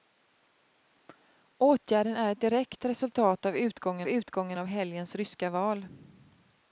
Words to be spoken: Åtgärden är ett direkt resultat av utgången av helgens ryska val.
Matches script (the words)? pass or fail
fail